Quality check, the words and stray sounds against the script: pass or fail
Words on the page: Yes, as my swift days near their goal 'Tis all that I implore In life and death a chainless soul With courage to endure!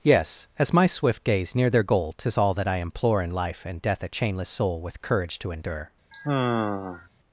fail